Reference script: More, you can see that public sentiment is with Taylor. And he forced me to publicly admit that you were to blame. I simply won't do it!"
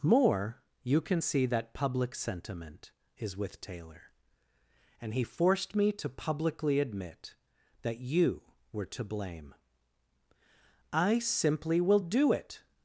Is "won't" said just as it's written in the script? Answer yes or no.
no